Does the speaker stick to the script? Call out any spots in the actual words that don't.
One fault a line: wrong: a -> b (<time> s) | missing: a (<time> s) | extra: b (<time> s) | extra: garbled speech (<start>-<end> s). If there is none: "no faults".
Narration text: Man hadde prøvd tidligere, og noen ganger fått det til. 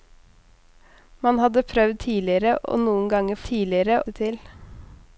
wrong: fått -> tidligere (3.5 s)